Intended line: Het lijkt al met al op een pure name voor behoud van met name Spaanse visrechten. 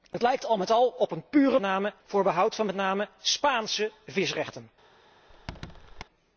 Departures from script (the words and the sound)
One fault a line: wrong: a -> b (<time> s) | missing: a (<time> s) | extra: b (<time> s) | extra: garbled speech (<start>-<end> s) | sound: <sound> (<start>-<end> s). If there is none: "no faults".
sound: squeak (5.3-6.0 s)